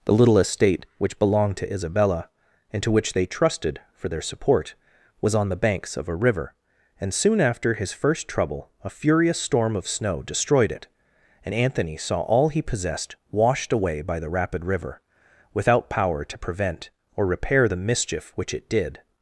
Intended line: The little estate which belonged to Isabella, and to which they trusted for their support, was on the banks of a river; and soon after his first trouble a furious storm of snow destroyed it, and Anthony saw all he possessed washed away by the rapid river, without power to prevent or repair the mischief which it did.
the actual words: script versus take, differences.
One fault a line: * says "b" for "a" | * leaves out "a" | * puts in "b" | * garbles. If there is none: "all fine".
all fine